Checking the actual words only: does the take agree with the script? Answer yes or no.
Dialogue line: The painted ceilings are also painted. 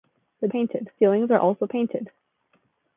yes